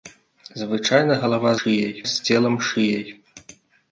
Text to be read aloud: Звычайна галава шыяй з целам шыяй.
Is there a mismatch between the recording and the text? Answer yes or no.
no